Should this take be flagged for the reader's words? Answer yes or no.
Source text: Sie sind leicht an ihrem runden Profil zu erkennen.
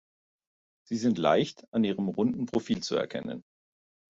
no